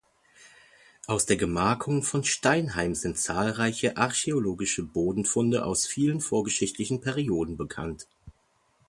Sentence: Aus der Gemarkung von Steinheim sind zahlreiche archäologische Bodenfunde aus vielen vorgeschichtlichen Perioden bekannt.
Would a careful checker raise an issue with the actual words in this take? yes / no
no